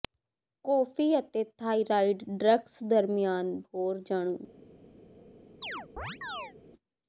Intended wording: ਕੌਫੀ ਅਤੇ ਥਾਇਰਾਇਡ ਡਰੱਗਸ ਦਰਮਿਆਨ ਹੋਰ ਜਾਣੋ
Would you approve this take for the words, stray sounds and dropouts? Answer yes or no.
no